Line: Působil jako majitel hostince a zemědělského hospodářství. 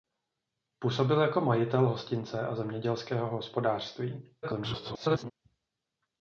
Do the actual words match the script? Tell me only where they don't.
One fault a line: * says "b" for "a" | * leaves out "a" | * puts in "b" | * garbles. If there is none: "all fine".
* garbles